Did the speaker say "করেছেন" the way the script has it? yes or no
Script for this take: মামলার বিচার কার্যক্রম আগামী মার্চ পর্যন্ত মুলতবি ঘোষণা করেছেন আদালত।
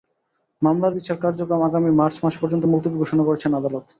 yes